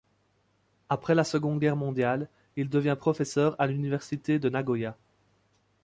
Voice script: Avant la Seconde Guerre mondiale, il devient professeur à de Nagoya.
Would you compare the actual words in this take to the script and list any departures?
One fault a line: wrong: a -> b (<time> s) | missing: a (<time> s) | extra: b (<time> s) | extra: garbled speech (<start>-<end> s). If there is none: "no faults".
wrong: Avant -> Après (0.9 s)
extra: l'Université (3.6 s)